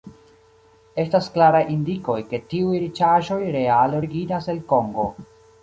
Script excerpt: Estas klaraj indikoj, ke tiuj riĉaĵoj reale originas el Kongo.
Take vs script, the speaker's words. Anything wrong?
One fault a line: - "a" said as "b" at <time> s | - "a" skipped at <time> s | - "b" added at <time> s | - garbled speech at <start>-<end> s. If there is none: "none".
none